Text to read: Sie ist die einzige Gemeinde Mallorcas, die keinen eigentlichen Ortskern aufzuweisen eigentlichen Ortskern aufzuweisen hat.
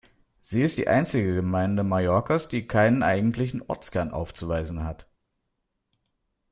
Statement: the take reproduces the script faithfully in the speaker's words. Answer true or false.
false